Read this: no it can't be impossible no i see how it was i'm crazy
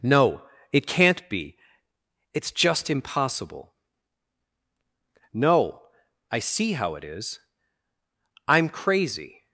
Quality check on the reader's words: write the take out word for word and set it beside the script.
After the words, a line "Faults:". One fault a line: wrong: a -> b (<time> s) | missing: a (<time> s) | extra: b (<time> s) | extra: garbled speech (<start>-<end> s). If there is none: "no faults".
no it can't be it's just impossible no i see how it is i'm crazy
Faults:
extra: it's just (2.3 s)
wrong: was -> is (7.0 s)